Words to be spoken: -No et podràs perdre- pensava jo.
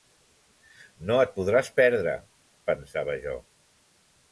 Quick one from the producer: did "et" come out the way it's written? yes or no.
yes